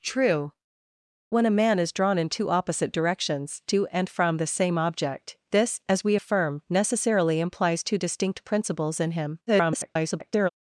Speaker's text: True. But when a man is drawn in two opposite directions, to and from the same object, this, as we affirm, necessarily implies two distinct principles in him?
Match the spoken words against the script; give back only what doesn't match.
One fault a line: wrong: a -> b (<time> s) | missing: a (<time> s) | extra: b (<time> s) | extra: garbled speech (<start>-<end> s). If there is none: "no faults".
missing: But (0.5 s)
extra: garbled speech (9.5-10.5 s)